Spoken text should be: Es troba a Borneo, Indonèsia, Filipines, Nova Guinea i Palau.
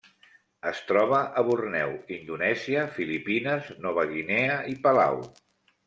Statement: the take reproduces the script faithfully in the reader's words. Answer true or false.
true